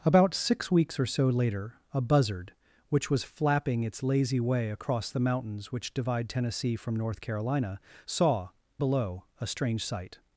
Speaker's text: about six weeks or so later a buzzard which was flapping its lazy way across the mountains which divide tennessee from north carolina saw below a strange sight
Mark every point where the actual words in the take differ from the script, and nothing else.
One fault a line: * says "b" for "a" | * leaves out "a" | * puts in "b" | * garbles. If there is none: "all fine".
all fine